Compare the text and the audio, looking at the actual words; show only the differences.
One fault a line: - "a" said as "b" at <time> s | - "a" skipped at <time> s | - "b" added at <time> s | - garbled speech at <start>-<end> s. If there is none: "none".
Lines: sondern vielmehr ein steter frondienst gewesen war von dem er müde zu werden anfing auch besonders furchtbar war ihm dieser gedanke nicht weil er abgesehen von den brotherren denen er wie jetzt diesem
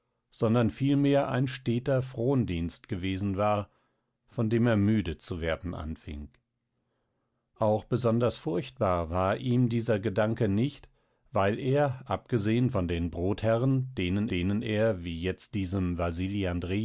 - "denen" added at 14.3 s